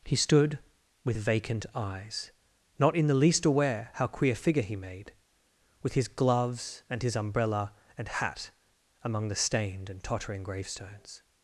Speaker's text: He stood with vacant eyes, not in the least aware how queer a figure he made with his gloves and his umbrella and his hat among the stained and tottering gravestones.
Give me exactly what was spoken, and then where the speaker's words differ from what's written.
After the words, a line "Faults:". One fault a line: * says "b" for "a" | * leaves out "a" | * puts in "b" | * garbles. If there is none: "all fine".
He stood with vacant eyes, not in the least aware how queer figure he made with his gloves and his umbrella and hat among the stained and tottering gravestones.
Faults:
* leaves out "a"
* leaves out "his"